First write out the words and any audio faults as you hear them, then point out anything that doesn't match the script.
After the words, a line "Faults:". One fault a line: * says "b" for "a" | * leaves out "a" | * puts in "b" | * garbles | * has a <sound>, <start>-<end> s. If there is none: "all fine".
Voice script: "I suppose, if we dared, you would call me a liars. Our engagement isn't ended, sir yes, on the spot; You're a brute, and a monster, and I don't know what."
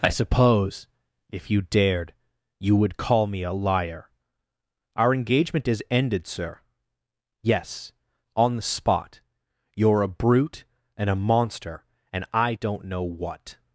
"I suppose, if you dared, you would call me a liar. Our engagement is ended, sir yes, on the spot; You're a brute, and a monster, and I don't know what."
Faults:
* says "you" for "we"
* says "liar" for "liars"
* says "is" for "isn't"